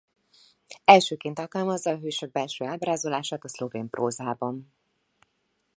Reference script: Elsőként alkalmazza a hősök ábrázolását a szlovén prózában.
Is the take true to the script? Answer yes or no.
no